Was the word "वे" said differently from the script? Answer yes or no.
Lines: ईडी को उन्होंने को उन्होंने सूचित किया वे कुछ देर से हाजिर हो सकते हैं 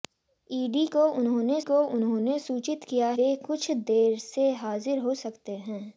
no